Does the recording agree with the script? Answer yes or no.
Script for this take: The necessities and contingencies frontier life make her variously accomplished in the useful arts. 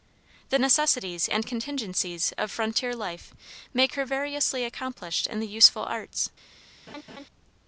no